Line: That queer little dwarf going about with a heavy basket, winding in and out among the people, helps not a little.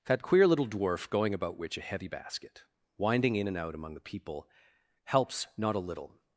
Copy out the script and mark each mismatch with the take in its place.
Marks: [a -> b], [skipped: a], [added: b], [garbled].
That queer little dwarf going about [with -> which] a heavy basket, winding in and out among the people, helps not a little.